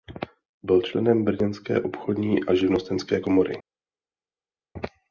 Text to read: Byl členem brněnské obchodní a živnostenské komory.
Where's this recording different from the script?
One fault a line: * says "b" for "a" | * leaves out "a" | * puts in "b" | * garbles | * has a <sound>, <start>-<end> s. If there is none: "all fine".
all fine